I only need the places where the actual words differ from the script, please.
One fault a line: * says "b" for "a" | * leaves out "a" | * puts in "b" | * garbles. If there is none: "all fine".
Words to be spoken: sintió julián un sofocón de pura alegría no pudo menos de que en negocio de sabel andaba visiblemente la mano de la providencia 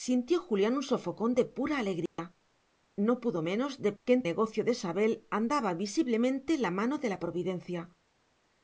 all fine